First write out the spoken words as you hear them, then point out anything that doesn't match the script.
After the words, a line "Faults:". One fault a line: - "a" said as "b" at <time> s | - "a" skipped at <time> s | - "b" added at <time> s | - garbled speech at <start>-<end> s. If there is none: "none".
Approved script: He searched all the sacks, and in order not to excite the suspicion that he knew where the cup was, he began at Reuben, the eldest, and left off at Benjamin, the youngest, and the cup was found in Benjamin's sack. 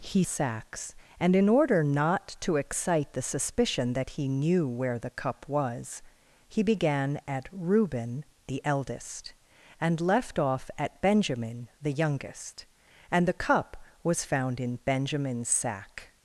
He sacks, and in order not to excite the suspicion that he knew where the cup was, he began at Reuben, the eldest, and left off at Benjamin, the youngest, and the cup was found in Benjamin's sack.
Faults:
- "searched all the" skipped at 0.2 s